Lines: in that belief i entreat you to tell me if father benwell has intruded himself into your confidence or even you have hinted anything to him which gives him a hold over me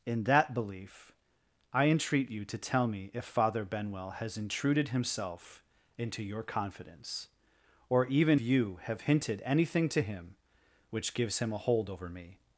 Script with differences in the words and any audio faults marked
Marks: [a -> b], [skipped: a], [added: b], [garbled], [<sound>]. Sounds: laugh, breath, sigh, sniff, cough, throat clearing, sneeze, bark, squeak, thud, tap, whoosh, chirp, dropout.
in that belief i entreat you to tell me if father benwell has intruded himself into your confidence or even you have hinted anything to him which gives him a hold over me